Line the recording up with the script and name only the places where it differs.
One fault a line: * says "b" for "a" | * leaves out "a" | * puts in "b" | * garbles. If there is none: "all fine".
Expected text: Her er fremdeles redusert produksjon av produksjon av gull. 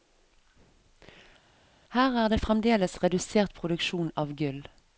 * puts in "det"
* leaves out "produksjon av"